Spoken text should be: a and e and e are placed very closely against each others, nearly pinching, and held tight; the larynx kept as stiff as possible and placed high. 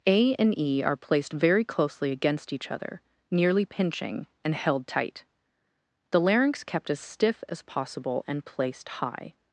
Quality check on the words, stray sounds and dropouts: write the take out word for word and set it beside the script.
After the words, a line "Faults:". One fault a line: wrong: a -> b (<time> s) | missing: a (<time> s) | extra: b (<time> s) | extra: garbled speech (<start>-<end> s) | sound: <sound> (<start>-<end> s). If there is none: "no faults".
a and e are placed very closely against each other, nearly pinching, and held tight; the larynx kept as stiff as possible and placed high.
Faults:
missing: and e (0.8 s)
wrong: others -> other (2.7 s)